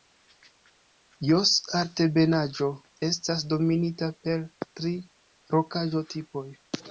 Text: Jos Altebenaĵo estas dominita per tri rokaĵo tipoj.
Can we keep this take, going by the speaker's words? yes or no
yes